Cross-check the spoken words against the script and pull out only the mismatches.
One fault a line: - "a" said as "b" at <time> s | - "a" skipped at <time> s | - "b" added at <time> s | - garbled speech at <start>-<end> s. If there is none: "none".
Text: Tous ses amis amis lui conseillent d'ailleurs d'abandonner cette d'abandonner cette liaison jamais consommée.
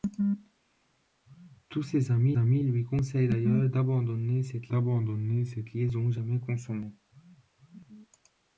none